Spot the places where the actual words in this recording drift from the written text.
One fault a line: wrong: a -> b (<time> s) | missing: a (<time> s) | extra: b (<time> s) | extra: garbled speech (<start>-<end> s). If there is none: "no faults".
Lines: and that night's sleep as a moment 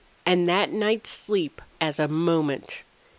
no faults